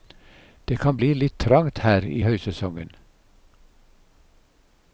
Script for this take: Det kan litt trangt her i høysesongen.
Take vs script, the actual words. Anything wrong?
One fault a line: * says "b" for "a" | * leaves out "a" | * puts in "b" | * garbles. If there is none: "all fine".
* puts in "bli"